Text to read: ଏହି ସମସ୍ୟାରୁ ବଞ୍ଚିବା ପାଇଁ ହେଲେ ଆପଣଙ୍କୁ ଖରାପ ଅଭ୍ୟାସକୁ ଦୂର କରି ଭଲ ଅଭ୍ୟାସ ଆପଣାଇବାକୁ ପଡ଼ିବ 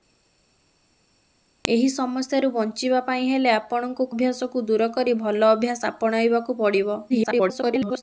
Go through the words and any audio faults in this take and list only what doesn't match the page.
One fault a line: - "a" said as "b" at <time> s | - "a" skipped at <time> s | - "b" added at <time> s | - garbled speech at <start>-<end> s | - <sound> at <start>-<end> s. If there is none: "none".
- "ଖରାପ" skipped at 4.1 s
- garbled speech at 7.1-8.0 s